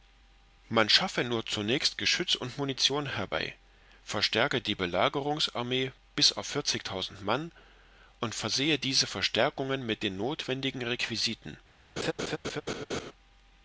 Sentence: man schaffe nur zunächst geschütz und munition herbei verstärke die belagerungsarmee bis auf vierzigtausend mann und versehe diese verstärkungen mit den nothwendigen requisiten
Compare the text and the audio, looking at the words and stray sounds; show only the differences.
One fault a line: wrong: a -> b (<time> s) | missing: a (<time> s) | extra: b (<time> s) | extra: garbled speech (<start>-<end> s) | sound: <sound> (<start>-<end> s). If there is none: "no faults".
sound: laugh (12.0-13.1 s)